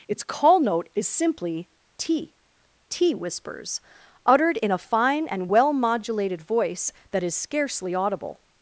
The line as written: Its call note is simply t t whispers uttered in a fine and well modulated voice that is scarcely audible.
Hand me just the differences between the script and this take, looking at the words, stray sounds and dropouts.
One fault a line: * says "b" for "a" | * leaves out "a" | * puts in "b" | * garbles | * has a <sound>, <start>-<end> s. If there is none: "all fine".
all fine